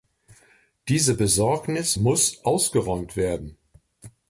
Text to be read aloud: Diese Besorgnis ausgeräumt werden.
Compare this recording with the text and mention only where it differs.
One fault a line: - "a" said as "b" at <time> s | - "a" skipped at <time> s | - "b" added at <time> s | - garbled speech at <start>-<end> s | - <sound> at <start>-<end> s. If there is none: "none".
- "muss" added at 1.9 s